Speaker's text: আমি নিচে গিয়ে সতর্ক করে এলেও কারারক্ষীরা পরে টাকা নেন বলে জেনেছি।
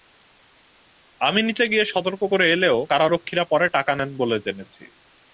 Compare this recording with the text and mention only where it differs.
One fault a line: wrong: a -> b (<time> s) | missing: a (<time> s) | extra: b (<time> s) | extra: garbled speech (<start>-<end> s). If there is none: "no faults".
no faults